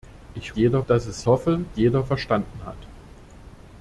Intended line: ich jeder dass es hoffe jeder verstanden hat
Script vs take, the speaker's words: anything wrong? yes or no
no